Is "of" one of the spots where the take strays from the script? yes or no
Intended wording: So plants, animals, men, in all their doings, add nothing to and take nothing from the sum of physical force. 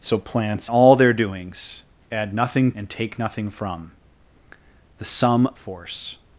yes